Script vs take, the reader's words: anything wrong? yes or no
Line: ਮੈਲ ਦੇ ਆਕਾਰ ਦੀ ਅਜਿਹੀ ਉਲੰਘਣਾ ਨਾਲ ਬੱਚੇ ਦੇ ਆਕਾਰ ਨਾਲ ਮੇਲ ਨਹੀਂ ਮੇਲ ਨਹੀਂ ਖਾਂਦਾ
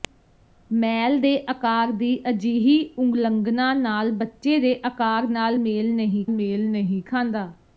no